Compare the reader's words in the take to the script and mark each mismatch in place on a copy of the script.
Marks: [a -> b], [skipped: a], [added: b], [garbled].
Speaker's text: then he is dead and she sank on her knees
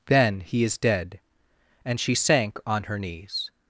then he is dead and she sank on her knees